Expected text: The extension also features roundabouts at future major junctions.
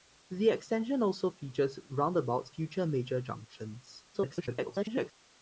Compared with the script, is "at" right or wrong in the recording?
wrong